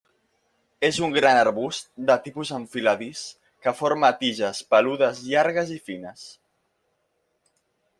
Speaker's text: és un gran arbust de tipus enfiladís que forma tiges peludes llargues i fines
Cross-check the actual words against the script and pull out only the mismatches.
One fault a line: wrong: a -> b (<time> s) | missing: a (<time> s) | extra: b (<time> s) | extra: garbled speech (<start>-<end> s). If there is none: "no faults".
no faults